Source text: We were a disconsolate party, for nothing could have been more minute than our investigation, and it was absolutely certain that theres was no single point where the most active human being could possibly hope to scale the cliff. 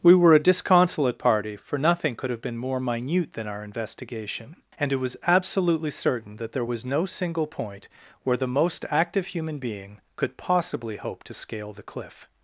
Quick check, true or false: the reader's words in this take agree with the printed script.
false